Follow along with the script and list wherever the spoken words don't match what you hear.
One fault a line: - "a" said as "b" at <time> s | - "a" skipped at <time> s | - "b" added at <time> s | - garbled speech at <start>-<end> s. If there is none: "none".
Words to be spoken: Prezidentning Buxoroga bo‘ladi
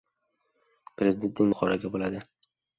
none